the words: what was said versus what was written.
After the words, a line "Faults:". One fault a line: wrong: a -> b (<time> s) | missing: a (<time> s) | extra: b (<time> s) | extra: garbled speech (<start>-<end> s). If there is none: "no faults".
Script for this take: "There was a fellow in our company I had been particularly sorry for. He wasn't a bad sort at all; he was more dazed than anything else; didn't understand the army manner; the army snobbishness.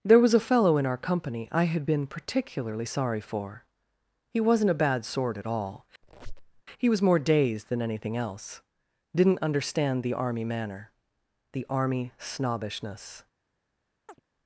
"There was a fellow in our company I had been particularly sorry for. He wasn't a bad sort at all; he was more dazed than anything else; didn't understand the army manner; the army snobbishness.
Faults:
no faults